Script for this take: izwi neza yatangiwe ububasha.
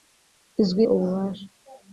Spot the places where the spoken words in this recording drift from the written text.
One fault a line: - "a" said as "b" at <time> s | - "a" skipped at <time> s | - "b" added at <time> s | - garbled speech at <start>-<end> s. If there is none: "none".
- "neza yatangiwe" skipped at 0.8 s